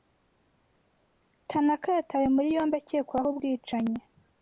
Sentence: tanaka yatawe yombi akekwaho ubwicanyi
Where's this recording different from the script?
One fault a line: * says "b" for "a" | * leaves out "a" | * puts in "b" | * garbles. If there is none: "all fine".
* puts in "muri"